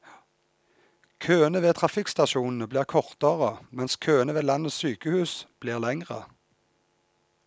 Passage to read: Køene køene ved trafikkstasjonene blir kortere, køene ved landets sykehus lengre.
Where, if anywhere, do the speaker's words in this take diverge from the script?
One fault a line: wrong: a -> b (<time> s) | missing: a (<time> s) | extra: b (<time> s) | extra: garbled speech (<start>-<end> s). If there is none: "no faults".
missing: køene (1.6 s)
extra: mens (3.7 s)
extra: blir (5.6 s)